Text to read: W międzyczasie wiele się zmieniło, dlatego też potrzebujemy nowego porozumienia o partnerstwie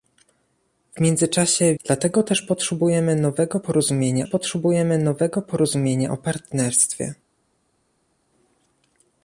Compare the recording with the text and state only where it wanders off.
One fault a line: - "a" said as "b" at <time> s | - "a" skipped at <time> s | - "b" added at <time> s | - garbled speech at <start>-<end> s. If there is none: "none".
- "wiele się zmieniło dlatego też" said as "dlatego też potrzebujemy nowego porozumienia" at 1.8 s